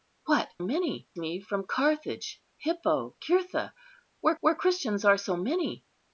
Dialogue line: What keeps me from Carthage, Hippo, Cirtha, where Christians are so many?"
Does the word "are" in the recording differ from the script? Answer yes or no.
no